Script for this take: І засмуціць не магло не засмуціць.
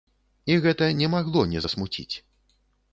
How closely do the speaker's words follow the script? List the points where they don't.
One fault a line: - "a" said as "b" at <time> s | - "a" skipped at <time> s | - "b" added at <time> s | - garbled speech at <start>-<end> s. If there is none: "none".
- "засмуціць" said as "гэта" at 0.6 s